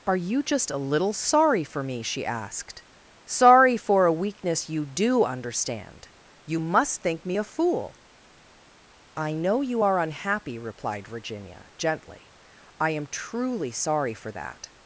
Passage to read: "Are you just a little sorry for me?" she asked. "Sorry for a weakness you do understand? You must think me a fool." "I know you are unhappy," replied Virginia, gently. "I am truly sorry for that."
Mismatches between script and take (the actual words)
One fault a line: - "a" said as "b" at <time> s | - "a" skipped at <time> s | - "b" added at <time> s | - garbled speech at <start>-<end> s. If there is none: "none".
none